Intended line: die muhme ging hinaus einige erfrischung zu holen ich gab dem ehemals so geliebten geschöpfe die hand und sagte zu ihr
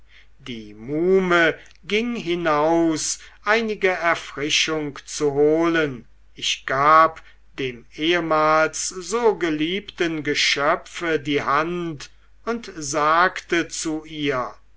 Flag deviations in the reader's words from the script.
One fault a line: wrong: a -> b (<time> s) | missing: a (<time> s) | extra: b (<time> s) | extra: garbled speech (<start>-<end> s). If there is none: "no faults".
no faults